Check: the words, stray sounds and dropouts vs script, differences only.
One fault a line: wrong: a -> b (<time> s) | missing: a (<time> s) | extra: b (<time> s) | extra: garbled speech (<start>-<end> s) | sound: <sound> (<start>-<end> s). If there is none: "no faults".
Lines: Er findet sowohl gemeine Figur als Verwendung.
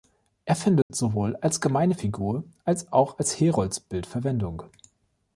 sound: dropout (0.8-0.9 s)
extra: als (1.4 s)
extra: auch als Heroldsbild (2.9 s)